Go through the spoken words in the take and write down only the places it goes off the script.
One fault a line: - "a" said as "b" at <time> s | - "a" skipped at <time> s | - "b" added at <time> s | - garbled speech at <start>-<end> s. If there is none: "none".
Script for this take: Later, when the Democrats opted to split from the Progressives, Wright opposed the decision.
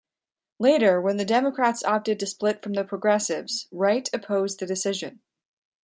none